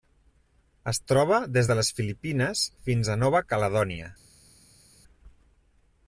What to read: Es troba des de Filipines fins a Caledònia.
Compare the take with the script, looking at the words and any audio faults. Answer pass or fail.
fail